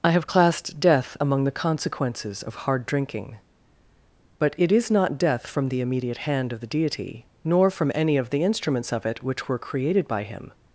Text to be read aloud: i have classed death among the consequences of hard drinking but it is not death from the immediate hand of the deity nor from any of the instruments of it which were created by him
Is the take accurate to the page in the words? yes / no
yes